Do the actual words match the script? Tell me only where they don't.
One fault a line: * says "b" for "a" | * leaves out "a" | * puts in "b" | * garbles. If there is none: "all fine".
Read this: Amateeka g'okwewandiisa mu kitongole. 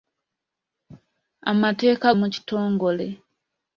* leaves out "g'okwewandiisa"